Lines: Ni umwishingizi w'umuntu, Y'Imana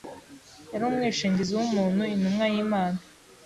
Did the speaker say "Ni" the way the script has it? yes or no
no